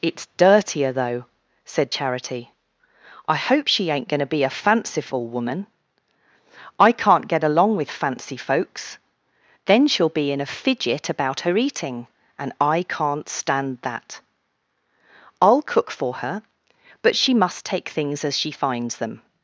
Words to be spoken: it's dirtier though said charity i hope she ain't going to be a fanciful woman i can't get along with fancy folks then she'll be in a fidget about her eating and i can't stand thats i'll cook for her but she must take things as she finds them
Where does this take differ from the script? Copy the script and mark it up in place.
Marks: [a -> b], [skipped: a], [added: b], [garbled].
it's dirtier though said charity i hope she ain't going to be a fanciful woman i can't get along with fancy folks then she'll be in a fidget about her eating and i can't stand [thats -> that] i'll cook for her but she must take things as she finds them